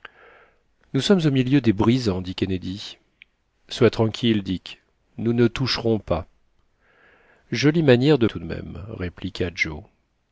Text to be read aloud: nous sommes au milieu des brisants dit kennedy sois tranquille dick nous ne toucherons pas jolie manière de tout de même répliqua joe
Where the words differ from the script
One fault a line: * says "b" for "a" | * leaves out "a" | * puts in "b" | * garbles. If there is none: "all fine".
all fine